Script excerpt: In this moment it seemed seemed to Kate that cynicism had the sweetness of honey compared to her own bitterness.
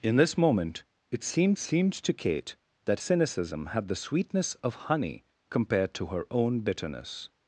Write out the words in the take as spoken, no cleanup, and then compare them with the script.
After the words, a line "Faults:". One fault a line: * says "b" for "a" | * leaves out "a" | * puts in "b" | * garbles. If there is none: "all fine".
In this moment it seemed seemed to Kate that cynicism had the sweetness of honey compared to her own bitterness.
Faults:
all fine